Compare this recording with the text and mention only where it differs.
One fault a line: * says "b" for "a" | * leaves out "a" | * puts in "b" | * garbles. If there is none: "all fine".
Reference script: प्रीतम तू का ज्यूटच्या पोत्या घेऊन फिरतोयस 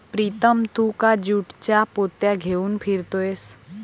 all fine